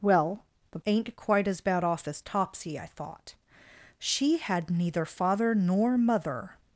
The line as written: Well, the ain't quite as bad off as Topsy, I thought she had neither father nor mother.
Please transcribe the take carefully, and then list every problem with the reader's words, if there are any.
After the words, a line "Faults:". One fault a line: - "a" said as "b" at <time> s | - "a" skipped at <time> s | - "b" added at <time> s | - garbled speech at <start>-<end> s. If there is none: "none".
Well, the ain't quite as bad off as Topsy, I thought she had neither father nor mother.
Faults:
none